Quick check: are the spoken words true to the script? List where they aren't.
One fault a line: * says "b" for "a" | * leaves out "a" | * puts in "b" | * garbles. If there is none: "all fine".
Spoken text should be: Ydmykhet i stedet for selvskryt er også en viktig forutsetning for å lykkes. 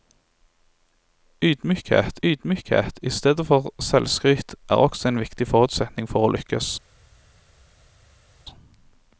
* puts in "ydmykhet"